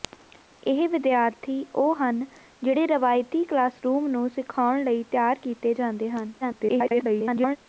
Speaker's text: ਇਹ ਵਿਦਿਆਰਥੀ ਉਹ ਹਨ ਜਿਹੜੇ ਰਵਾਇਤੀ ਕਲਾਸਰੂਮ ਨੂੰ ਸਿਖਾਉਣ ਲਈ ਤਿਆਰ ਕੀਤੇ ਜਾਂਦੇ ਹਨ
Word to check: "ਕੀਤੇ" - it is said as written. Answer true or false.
true